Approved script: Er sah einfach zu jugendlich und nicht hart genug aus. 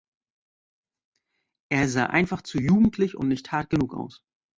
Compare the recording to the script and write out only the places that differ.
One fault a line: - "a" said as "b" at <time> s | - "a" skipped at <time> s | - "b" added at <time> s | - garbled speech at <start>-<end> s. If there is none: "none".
none